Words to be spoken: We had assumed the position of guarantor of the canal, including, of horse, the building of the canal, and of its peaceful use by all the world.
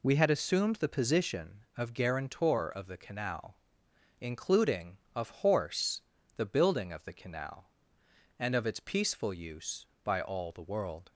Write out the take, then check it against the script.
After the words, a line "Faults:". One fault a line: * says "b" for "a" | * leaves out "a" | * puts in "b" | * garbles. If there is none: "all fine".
We had assumed the position of guarantor of the canal, including, of horse, the building of the canal, and of its peaceful use by all the world.
Faults:
all fine